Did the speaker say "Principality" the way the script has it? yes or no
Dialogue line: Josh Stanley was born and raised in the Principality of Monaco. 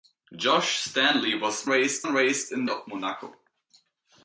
no